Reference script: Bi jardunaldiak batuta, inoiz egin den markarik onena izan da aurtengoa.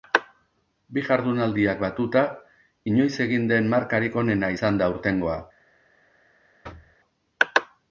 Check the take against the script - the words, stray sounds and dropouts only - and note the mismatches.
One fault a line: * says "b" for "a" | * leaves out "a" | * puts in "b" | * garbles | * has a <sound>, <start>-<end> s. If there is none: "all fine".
* has a thud, 6.6-7.0 s